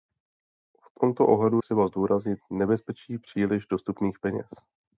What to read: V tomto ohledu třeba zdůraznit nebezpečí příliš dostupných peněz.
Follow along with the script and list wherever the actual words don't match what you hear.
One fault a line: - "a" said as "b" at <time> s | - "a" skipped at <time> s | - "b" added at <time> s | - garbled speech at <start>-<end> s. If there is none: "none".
none